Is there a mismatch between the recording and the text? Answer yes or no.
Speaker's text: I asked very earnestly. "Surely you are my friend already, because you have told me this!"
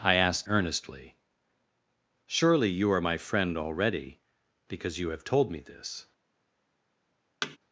yes